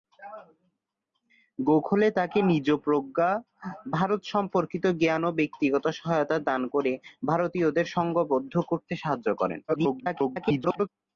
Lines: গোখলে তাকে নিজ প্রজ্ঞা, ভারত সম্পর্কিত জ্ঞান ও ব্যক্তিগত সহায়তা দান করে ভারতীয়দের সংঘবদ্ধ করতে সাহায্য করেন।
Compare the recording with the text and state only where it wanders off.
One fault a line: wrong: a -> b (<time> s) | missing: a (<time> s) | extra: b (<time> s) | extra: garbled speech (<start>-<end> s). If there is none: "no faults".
extra: garbled speech (9.7-10.9 s)